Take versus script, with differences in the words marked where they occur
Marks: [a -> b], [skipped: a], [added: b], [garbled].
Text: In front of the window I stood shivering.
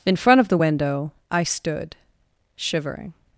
In front of the window I stood shivering.